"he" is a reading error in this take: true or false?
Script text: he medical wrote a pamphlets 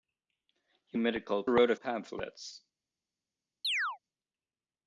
false